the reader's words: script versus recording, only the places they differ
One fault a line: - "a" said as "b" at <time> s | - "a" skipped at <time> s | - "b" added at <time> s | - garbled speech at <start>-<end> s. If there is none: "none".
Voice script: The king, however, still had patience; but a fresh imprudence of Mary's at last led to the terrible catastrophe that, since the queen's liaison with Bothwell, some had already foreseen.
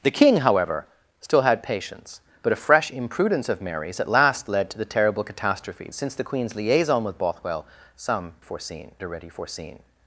- "that" skipped at 5.9 s
- "had" said as "foreseen" at 8.4 s